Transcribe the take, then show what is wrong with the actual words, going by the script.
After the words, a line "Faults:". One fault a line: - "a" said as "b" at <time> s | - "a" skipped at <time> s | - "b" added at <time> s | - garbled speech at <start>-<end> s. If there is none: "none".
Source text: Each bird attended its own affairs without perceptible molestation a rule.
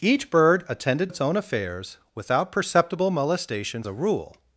Each bird attended its own affairs without perceptible molestation a rule.
Faults:
none